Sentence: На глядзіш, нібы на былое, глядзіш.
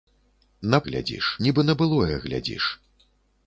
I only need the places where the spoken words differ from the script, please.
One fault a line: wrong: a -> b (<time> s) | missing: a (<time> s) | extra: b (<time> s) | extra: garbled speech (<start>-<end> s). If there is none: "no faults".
no faults